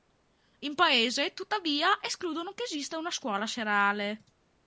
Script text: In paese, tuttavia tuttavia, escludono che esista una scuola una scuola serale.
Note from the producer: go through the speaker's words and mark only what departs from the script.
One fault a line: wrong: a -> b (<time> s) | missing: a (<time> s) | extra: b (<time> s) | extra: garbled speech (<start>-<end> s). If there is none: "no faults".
missing: tuttavia (2.0 s)
missing: una scuola (3.5 s)